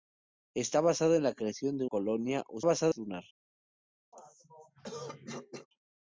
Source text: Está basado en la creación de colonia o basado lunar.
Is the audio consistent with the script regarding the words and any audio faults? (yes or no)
no